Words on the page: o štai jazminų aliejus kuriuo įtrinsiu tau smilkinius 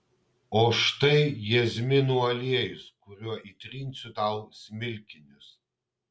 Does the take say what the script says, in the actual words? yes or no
yes